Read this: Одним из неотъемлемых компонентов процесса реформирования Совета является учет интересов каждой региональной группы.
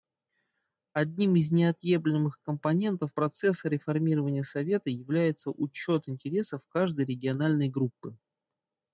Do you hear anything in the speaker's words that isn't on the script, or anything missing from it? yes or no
no